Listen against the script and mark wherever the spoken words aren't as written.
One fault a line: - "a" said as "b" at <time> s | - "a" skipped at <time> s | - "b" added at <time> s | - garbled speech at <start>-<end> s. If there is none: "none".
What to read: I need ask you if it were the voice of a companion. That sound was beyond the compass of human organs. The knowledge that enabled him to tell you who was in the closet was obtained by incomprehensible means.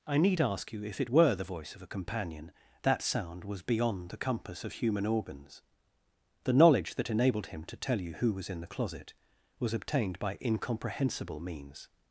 none